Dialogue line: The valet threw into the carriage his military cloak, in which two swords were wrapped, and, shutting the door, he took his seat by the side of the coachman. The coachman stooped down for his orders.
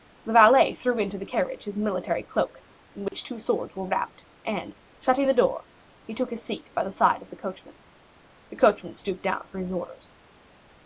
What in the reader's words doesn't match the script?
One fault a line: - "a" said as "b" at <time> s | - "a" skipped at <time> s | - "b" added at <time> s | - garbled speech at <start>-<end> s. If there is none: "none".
none